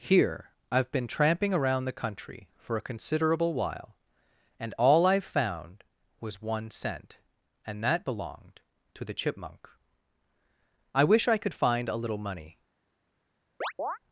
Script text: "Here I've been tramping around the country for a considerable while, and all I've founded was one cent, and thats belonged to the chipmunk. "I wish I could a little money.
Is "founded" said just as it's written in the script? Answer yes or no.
no